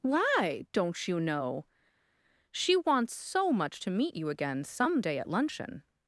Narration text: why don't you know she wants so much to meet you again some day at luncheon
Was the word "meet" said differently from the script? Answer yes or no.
no